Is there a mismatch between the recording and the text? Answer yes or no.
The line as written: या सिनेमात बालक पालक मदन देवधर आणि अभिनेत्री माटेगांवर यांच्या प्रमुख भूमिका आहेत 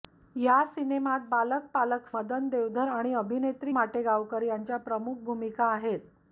no